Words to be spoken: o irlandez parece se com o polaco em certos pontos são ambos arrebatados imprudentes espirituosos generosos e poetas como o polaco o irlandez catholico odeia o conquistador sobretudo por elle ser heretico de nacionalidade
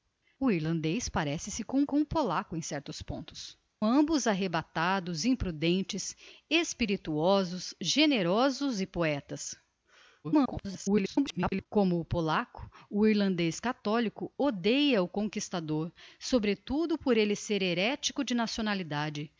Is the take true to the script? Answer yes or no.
no